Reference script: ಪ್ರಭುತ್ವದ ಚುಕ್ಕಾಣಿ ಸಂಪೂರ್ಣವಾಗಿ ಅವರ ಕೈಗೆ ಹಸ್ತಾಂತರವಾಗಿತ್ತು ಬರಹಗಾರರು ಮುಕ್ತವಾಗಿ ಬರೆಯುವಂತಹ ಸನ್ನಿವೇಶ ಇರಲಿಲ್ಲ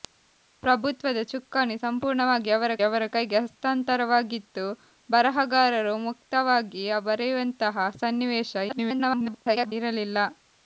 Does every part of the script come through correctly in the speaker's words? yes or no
no